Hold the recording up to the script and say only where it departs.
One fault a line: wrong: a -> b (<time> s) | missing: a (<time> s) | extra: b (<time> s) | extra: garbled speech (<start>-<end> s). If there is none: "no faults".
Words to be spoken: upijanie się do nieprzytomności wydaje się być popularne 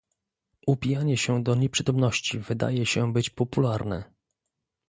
no faults